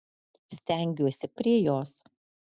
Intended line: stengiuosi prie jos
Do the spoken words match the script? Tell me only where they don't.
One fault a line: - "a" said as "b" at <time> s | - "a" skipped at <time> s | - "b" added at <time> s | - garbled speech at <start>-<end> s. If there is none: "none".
none